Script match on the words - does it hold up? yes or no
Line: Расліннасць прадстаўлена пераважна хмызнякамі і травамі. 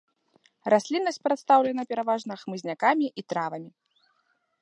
yes